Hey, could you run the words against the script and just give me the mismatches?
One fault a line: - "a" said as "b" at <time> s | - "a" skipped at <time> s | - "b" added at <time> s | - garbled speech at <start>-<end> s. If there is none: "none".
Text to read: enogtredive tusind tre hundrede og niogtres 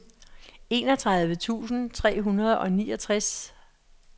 none